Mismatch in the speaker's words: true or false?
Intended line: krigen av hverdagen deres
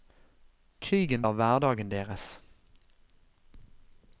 false